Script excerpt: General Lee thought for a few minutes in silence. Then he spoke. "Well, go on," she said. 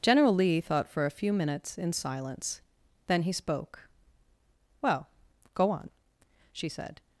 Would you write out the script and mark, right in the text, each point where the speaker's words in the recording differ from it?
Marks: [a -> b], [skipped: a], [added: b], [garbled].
General Lee thought for a few minutes in silence. Then he spoke. "Well, go on," she said.